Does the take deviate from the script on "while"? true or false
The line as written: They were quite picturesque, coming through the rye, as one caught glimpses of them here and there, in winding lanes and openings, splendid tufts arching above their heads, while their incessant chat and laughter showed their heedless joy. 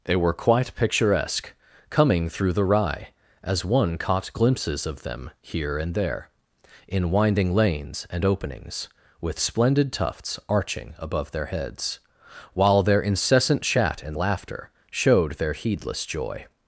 false